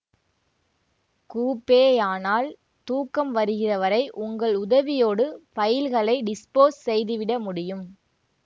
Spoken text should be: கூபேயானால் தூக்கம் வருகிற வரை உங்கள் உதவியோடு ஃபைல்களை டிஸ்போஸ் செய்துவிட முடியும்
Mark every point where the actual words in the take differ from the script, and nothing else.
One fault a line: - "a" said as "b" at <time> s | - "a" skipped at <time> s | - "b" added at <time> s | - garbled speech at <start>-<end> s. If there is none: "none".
none